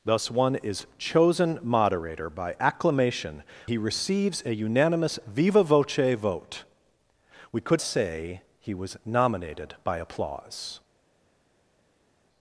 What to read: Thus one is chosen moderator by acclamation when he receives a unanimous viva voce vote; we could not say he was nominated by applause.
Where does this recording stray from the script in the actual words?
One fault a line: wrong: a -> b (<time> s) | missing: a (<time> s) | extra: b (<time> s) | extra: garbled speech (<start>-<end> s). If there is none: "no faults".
missing: when (3.4 s)
missing: not (7.8 s)